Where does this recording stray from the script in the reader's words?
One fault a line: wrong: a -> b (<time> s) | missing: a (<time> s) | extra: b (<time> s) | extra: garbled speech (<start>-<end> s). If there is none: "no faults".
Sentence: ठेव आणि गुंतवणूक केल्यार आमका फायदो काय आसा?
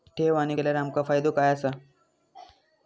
missing: गुंतवणूक (0.6 s)